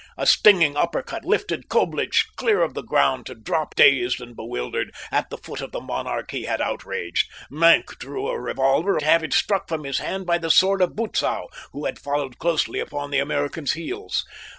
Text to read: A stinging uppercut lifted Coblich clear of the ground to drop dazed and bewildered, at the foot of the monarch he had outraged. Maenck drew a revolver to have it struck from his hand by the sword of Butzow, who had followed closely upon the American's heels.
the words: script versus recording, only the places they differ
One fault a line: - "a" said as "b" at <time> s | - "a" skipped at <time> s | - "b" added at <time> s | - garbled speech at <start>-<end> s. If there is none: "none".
none